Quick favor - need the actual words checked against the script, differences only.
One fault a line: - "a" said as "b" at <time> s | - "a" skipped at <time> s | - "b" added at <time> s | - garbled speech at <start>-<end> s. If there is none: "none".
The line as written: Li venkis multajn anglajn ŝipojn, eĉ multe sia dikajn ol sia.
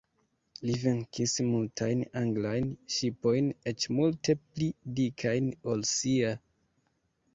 - "sia" said as "pli" at 4.4 s